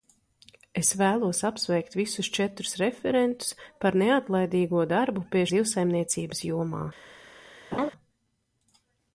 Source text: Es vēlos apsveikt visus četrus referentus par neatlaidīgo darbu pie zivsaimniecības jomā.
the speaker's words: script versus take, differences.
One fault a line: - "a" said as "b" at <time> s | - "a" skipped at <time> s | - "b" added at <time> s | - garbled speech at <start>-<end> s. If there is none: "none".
none